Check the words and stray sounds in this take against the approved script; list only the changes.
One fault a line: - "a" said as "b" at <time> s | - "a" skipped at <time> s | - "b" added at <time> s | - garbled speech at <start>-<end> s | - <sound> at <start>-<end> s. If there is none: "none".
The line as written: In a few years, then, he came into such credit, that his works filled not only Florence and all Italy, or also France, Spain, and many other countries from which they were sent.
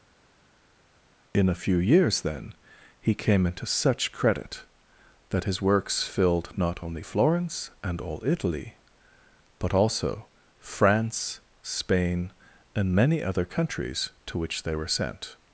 - "or" said as "but" at 9.6 s
- "from" said as "to" at 14.3 s